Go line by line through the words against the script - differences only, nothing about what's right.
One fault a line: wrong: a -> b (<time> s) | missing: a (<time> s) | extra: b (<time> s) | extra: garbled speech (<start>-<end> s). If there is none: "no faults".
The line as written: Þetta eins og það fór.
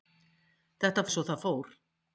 no faults